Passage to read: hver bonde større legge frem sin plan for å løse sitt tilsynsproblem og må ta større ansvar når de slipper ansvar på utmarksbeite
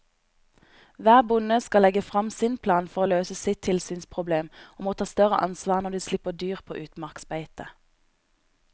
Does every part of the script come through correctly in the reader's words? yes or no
no